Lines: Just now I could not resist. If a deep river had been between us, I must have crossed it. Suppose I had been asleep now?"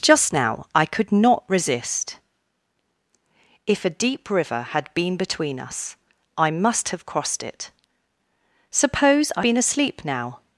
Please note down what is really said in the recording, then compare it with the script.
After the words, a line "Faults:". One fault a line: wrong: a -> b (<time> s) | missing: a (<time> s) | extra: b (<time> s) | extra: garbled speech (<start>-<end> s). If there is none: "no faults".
Just now I could not resist. If a deep river had been between us, I must have crossed it. Suppose I been asleep now?"
Faults:
missing: had (9.4 s)